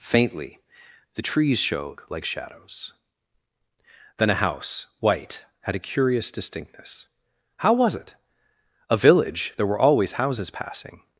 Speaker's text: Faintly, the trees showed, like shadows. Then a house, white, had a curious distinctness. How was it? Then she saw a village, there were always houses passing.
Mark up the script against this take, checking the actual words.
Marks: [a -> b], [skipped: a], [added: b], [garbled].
Faintly, the trees showed, like shadows. Then a house, white, had a curious distinctness. How was it? [skipped: Then she saw] a village, there were always houses passing.